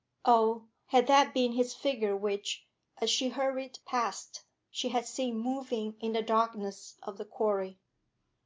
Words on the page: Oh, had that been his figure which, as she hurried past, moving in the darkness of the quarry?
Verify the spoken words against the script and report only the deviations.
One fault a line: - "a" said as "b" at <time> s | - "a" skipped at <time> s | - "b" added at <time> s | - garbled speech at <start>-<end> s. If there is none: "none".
- "she had seen" added at 4.7 s